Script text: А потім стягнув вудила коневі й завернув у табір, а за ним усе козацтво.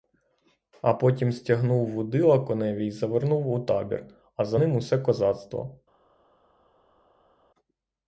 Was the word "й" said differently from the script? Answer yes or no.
no